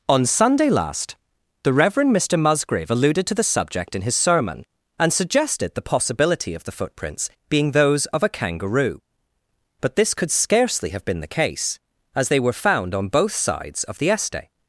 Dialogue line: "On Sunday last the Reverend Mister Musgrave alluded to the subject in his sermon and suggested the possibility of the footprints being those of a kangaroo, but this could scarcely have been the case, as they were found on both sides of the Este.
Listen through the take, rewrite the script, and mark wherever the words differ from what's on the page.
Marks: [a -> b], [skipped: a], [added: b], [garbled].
"On Sunday last the Reverend Mister Musgrave alluded to the subject in his sermon and suggested the possibility of the footprints being those of a kangaroo, but this could scarcely have been the case, as they were found on both sides of the Este.